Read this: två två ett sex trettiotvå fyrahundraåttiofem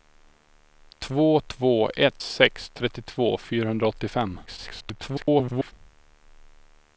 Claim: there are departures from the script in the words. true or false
true